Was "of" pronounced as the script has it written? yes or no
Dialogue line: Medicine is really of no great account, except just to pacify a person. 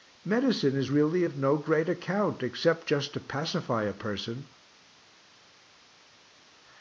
yes